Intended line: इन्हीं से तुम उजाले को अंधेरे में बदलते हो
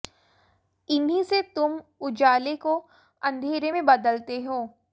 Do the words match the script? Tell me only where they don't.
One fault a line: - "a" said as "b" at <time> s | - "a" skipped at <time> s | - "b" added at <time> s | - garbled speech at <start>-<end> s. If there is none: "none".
none